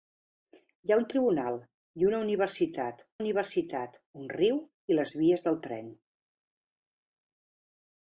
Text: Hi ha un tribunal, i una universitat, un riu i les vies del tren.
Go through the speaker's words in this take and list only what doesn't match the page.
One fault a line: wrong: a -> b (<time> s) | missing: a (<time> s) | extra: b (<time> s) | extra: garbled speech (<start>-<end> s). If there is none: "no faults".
extra: universitat (3.2 s)